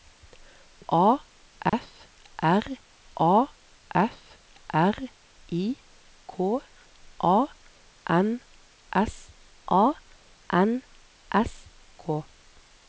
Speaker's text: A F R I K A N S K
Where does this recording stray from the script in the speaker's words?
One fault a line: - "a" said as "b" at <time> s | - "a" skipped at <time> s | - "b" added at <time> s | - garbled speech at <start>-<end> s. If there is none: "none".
- "a F R" added at 3.2 s
- "A N S" added at 9.7 s